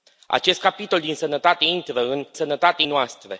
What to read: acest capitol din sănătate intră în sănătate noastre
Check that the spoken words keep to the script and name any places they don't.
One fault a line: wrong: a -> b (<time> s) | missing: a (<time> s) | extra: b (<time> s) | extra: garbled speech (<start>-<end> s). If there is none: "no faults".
no faults